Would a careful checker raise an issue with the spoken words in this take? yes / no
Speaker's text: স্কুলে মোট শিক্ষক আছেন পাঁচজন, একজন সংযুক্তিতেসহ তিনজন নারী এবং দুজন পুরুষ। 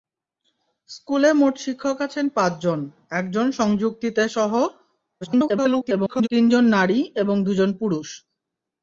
yes